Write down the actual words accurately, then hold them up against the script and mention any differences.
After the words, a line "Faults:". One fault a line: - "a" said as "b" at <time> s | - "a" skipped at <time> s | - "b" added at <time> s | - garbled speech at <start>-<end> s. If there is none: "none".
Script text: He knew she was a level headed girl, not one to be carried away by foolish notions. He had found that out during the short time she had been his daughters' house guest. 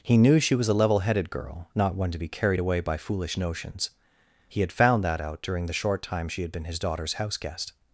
He knew she was a level headed girl, not one to be carried away by foolish notions. He had found that out during the short time she had been his daughters' house guest.
Faults:
none